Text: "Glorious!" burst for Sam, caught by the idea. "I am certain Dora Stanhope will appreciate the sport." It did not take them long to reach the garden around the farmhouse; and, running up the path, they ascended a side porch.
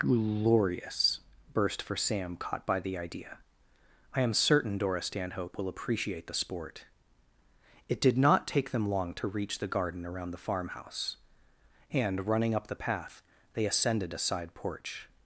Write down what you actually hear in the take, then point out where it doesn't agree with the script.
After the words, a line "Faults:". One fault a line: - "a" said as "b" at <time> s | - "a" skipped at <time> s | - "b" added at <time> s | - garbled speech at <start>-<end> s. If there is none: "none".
"Glorious!" burst for Sam, caught by the idea. "I am certain Dora Stanhope will appreciate the sport." It did not take them long to reach the garden around the farmhouse; and, running up the path, they ascended a side porch.
Faults:
none